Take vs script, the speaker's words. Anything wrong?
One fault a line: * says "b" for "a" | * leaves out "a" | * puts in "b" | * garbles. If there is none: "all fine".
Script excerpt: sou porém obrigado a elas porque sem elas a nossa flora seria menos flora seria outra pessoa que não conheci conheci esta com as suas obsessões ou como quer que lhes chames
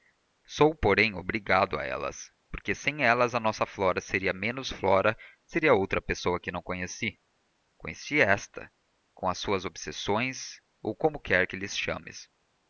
all fine